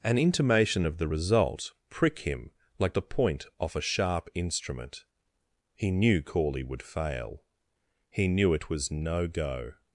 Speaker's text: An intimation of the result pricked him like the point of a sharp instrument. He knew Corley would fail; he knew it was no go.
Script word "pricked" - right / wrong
wrong